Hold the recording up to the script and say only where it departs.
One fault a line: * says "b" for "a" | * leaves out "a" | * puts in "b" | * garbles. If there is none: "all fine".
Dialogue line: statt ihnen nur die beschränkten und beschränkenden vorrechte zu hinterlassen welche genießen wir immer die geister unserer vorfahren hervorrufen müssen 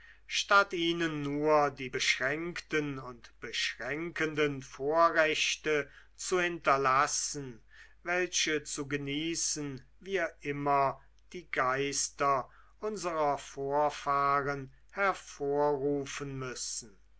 * puts in "zu"